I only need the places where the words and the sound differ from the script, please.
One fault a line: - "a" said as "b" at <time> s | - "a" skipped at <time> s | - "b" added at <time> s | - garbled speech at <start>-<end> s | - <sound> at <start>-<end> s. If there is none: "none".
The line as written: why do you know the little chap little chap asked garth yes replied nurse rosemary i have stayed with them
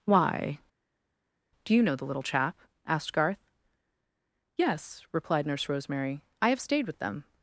- "little chap" skipped at 2.6 s